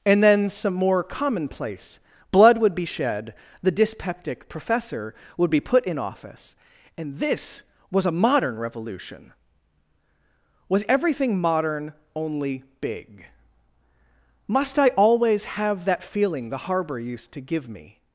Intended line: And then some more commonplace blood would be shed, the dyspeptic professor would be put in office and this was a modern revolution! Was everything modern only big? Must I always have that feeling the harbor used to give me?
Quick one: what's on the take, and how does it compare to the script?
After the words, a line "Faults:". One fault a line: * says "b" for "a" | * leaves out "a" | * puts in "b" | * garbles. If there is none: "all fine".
And then some more commonplace blood would be shed, the dyspeptic professor would be put in office and this was a modern revolution! Was everything modern only big? Must I always have that feeling the harbor used to give me?
Faults:
all fine